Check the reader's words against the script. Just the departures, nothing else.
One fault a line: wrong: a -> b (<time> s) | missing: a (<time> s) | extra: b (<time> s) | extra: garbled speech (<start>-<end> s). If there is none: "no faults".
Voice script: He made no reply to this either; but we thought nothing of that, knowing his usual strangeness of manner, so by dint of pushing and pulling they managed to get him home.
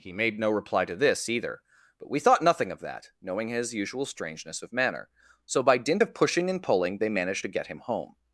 no faults